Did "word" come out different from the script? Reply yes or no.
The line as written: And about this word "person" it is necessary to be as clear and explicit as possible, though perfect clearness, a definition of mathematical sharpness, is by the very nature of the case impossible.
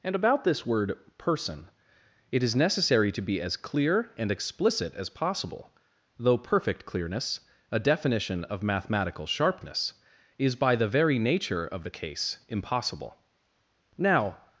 no